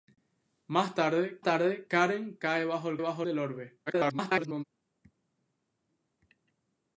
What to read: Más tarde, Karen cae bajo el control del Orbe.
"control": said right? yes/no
no